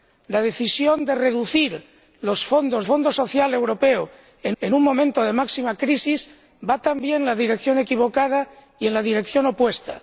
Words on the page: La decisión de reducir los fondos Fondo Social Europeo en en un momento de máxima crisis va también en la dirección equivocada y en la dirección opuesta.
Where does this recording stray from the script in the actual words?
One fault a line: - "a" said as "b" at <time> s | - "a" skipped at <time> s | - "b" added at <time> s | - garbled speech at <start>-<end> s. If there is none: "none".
none